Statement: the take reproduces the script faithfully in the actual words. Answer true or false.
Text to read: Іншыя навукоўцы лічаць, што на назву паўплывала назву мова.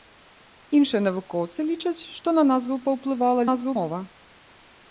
true